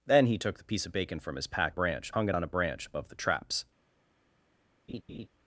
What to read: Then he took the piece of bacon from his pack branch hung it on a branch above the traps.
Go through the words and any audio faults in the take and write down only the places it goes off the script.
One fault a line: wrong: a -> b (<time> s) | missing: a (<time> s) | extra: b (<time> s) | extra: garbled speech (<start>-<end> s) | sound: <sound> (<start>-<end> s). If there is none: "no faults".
sound: laugh (4.9-5.3 s)